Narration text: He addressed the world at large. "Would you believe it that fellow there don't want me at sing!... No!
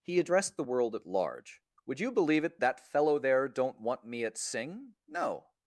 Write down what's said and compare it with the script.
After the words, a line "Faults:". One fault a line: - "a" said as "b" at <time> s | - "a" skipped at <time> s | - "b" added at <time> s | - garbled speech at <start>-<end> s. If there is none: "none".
He addressed the world at large. "Would you believe it that fellow there don't want me at sing!... No!
Faults:
none